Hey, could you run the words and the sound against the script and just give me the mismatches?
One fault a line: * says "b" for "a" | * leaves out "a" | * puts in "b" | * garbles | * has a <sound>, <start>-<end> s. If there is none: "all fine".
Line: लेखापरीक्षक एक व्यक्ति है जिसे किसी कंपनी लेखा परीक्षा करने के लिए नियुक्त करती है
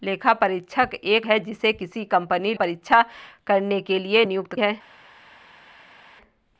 * leaves out "व्यक्ति"
* leaves out "लेखा"
* leaves out "करती"